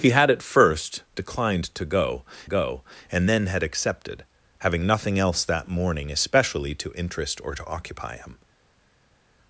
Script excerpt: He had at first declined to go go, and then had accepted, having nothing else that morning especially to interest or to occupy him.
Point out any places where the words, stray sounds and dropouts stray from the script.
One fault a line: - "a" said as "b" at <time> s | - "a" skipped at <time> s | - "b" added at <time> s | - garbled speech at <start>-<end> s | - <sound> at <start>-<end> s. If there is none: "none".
none